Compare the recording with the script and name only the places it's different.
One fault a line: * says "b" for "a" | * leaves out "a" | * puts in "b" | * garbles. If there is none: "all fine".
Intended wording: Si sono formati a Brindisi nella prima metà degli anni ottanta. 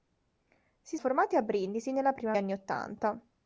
* leaves out "sono"
* leaves out "metà degli"